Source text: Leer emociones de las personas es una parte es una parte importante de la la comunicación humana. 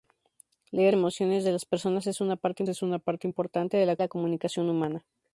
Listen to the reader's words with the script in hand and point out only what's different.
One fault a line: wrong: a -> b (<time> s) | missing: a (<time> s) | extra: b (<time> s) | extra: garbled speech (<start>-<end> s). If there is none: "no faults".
no faults